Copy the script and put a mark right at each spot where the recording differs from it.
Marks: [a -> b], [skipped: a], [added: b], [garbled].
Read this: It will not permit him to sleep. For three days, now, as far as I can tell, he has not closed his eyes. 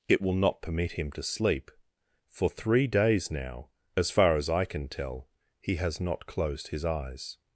It will not permit him to sleep. For three days, now, as far as I can tell, he has not closed his eyes.